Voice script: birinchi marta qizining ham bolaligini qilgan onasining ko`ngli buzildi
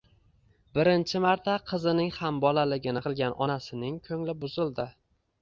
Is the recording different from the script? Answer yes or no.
no